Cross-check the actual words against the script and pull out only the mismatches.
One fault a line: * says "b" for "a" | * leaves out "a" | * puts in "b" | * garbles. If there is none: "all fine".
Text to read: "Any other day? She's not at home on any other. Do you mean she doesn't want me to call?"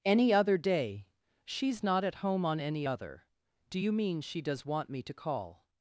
* says "does" for "doesn't"